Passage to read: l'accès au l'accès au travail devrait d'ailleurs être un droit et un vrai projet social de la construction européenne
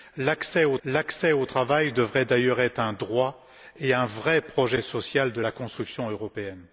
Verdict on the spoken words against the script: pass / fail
pass